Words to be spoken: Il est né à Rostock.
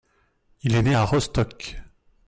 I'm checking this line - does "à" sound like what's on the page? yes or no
yes